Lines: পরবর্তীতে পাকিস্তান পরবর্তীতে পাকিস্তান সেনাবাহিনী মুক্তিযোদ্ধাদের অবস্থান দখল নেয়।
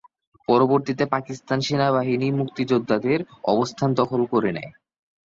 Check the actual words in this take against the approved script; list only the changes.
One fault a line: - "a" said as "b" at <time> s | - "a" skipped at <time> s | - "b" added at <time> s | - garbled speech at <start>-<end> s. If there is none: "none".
- "পরবর্তীতে পাকিস্তান" skipped at 1.6 s
- "করে" added at 4.3 s